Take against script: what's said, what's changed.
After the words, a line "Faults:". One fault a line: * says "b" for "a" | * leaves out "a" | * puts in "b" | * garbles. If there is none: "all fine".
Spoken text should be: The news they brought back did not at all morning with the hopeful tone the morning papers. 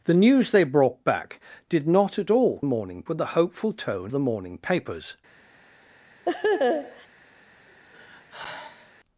The news they brought back did not at all morning with the hopeful tone the morning papers.
Faults:
all fine